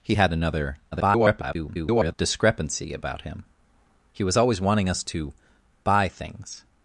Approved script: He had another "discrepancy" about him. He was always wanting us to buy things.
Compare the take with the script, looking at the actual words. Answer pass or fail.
fail